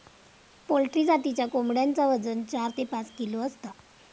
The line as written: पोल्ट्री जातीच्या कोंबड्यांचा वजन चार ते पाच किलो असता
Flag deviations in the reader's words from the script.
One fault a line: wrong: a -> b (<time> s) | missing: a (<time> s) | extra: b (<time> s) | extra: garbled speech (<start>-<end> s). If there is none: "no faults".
no faults